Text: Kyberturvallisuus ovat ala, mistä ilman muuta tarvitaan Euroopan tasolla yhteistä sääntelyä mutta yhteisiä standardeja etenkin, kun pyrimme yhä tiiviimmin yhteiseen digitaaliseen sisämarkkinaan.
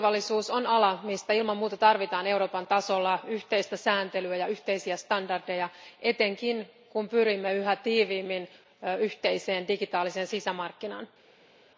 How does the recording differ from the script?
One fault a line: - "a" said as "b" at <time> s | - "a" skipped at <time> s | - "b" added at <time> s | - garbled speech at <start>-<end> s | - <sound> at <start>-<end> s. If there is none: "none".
- "ovat" said as "on" at 0.5 s
- "mutta" said as "ja" at 4.4 s